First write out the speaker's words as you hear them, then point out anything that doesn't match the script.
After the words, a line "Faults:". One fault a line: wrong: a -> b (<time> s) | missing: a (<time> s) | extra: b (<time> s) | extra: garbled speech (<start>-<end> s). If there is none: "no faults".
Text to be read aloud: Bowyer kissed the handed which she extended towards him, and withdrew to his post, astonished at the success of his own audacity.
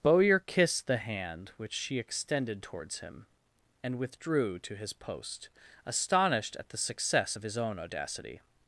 Bowyer kissed the hand which she extended towards him, and withdrew to his post, astonished at the success of his own audacity.
Faults:
wrong: handed -> hand (1.0 s)